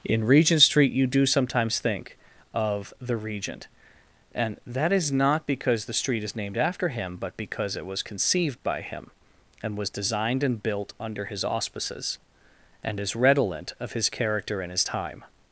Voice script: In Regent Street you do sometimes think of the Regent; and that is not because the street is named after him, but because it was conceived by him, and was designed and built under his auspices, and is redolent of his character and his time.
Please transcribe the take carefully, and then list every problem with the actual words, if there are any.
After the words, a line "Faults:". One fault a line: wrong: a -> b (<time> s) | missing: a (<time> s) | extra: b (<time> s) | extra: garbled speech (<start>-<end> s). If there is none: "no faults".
In Regent Street you do sometimes think of the Regent; and that is not because the street is named after him, but because it was conceived by him, and was designed and built under his auspices, and is redolent of his character and his time.
Faults:
no faults